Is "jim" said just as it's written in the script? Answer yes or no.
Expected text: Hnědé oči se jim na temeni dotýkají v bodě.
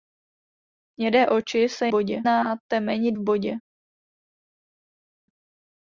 no